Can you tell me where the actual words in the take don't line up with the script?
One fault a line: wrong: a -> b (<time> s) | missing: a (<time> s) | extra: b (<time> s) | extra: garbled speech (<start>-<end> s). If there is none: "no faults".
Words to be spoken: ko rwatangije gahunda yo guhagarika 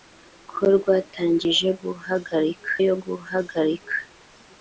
wrong: gahunda -> guhagarika (1.8 s)